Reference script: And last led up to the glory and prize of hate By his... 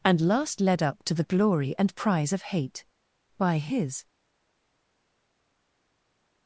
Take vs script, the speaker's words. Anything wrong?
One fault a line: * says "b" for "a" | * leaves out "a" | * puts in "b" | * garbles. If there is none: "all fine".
all fine